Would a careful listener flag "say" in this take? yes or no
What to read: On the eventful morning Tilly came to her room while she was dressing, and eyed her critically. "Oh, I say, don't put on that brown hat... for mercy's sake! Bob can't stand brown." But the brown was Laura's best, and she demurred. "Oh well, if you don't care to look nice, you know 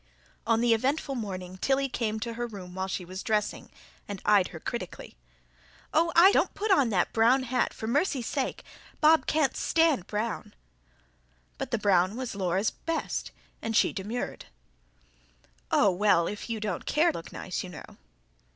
yes